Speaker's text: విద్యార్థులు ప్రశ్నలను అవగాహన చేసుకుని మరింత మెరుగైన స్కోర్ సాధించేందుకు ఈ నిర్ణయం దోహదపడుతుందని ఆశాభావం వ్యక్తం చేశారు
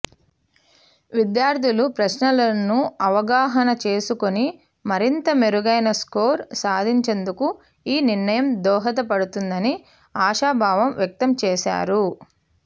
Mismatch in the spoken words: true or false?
false